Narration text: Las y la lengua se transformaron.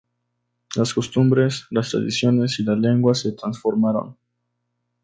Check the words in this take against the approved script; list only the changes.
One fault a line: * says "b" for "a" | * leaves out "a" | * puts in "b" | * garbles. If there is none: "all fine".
* puts in "costumbres las tradiciones"